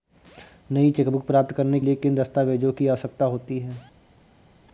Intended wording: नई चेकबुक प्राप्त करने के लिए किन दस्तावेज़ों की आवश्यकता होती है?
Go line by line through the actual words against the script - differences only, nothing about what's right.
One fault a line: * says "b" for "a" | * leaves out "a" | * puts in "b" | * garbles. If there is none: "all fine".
* leaves out "के"